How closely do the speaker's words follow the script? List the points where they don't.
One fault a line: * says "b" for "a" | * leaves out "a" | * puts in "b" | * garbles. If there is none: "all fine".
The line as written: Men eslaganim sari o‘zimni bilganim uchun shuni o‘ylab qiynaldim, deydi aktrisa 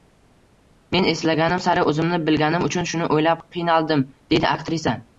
all fine